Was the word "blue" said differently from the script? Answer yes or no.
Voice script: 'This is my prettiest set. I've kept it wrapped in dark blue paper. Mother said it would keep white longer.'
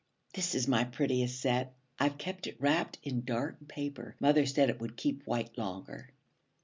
yes